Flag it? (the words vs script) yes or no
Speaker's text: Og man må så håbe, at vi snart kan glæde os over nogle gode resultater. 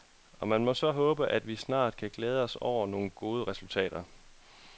no